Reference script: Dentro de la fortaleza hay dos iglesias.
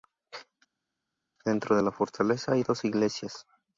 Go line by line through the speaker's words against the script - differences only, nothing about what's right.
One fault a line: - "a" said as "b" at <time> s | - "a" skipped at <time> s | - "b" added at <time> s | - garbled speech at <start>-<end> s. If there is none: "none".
none